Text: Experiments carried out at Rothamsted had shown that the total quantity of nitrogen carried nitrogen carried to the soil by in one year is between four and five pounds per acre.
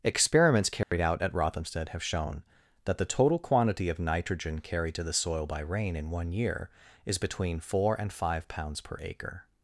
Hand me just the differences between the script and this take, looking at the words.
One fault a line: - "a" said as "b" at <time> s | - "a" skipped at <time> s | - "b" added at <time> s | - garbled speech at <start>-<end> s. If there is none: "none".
- "had" said as "have" at 1.9 s
- "nitrogen carried" skipped at 5.0 s
- "rain" added at 5.6 s